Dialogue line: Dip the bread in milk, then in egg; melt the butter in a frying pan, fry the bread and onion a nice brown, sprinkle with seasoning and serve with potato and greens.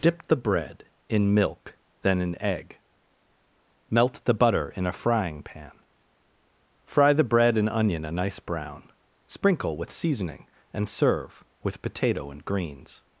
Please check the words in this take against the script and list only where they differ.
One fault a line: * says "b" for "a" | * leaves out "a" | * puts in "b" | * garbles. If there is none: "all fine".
all fine